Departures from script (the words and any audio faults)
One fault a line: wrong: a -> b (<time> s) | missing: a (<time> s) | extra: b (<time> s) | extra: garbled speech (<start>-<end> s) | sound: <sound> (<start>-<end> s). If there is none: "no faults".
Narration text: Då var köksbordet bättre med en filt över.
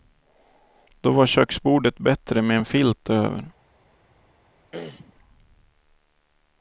sound: throat clearing (4.7-5.1 s)